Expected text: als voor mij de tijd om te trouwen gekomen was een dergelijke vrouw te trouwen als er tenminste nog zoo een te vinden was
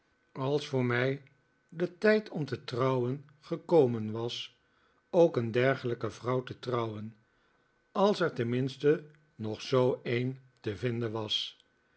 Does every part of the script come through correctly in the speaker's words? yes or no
no